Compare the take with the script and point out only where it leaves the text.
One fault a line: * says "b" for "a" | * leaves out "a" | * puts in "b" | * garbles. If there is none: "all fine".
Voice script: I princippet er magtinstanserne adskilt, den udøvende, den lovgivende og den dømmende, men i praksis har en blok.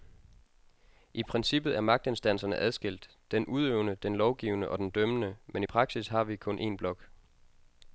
* puts in "vi kun"